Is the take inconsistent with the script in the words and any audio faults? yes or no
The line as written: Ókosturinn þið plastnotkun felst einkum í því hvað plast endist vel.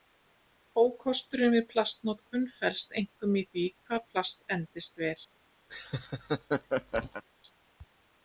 yes